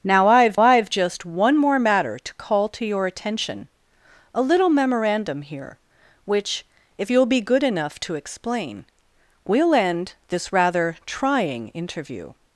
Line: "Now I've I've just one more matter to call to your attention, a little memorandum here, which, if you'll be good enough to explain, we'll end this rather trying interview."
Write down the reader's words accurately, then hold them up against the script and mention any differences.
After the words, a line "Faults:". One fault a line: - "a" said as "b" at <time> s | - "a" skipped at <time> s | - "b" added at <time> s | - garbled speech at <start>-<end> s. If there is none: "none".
"Now I've I've just one more matter to call to your attention, a little memorandum here, which, if you'll be good enough to explain, we'll end this rather trying interview."
Faults:
none